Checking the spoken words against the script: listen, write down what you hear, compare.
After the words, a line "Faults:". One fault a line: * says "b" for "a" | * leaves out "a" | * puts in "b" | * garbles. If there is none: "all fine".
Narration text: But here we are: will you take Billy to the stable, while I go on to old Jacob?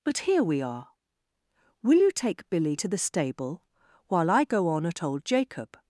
But here we are: will you take Billy to the stable, while I go on at old Jacob?
Faults:
* says "at" for "to"